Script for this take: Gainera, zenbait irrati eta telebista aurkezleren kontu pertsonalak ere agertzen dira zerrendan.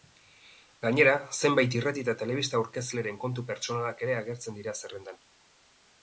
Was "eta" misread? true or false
false